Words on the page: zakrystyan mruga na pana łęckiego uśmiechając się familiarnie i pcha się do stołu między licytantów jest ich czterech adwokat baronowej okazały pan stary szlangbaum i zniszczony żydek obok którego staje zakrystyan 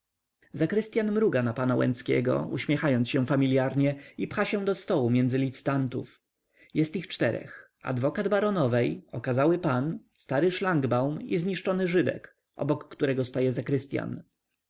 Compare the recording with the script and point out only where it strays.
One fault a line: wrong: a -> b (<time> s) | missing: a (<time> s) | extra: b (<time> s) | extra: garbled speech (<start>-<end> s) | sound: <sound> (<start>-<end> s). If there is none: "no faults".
no faults